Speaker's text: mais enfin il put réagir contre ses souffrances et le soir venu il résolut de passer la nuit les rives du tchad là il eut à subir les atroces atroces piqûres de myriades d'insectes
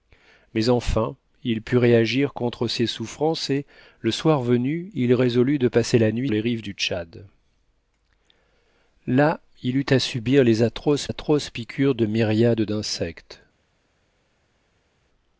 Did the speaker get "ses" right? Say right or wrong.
right